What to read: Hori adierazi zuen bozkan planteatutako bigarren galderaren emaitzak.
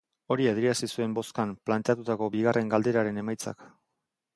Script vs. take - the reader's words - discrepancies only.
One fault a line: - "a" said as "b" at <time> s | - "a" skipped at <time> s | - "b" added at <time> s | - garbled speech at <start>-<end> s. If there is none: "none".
none